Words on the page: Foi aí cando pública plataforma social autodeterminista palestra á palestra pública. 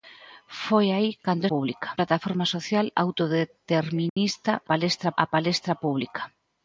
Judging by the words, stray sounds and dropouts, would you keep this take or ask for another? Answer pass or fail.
fail